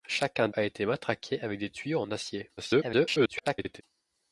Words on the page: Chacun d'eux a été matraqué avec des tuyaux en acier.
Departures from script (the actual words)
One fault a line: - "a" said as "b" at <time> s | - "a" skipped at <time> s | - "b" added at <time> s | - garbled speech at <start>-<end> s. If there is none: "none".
- "d'eux" skipped at 0.5 s
- garbled speech at 2.6-3.8 s